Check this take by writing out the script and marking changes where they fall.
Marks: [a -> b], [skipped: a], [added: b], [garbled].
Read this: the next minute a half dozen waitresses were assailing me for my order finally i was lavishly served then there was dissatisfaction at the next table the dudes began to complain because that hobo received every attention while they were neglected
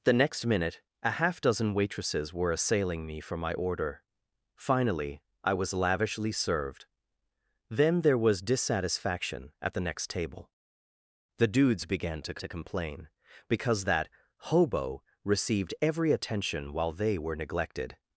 the next minute a half dozen waitresses were assailing me for my order finally i was lavishly served then there was dissatisfaction at the next table the dudes began to [added: to] complain because that hobo received every attention while they were neglected